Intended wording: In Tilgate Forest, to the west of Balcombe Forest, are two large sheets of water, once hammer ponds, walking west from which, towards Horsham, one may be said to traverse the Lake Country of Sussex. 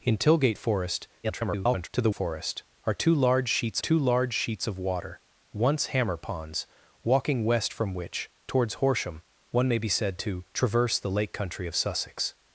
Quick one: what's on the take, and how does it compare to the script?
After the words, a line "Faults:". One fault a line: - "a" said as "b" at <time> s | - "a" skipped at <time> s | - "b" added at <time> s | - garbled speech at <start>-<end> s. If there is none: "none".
In Tilgate Forest, [garbled] to the Forest, are two large sheets two large sheets of water, once hammer ponds, walking west from which, towards Horsham, one may be said to traverse the Lake Country of Sussex.
Faults:
- garbled speech at 1.2-1.9 s
- "west of Balcombe Forest are" said as "Forest are two large sheets" at 2.1 s